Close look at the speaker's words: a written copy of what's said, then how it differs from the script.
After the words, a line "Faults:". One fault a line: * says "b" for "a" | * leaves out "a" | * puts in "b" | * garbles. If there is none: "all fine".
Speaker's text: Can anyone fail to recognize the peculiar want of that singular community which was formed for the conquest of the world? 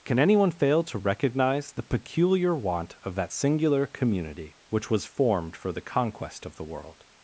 Can anyone fail to recognize the peculiar want of that singular community which was formed for the conquest of the world?
Faults:
all fine